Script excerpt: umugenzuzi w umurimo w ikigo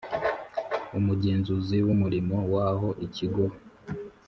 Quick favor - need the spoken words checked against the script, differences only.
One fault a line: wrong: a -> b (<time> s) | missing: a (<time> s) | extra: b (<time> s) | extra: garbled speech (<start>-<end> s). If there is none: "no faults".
extra: aho (2.7 s)